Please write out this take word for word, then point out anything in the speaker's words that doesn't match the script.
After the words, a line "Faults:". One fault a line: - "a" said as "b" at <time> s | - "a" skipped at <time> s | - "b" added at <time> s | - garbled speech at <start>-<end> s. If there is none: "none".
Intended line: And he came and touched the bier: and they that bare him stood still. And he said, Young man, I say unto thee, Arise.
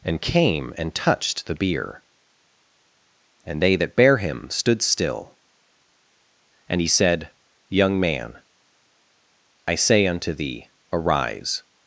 And came and touched the bier: and they that bare him stood still. And he said, Young man, I say unto thee, Arise.
Faults:
- "he" skipped at 0.2 s